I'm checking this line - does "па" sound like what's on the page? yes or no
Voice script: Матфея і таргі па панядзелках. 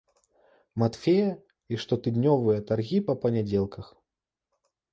yes